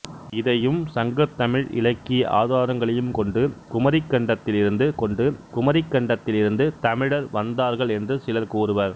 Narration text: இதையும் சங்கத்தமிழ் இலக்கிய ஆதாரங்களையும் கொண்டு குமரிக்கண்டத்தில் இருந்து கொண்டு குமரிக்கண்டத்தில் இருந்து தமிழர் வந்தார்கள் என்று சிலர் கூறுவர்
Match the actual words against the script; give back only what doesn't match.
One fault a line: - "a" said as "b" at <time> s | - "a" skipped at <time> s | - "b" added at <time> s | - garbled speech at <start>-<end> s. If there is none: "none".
none